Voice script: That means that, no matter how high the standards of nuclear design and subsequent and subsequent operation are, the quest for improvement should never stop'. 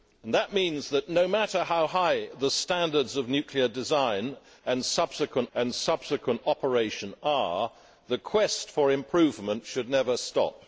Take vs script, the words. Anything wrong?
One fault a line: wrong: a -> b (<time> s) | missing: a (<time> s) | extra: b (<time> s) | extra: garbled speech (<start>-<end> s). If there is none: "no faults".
no faults